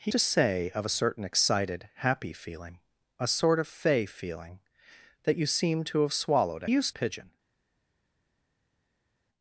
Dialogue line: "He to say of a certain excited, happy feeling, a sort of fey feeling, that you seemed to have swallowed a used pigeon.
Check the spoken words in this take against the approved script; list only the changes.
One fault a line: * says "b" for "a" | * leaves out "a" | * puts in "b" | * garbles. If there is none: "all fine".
all fine